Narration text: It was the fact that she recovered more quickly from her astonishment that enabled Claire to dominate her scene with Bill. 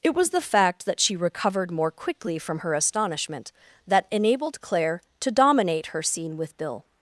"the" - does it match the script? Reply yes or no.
yes